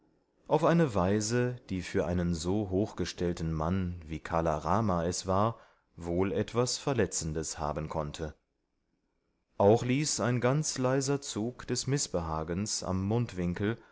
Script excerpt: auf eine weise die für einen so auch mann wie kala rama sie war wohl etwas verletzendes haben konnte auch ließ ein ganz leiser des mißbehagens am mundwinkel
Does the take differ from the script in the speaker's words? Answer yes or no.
yes